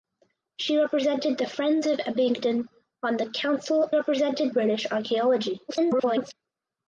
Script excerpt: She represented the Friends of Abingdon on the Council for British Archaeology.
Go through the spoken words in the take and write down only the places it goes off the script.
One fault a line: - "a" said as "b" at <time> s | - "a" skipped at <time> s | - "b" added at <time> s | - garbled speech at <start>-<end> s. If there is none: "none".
- "for" said as "represented" at 3.9 s
- garbled speech at 5.7-6.3 s